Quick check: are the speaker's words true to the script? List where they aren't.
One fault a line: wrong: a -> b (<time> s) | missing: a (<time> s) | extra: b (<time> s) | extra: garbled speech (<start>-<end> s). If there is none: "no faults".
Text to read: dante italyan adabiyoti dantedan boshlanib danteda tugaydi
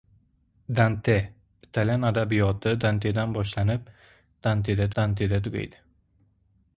extra: danteda (5.0 s)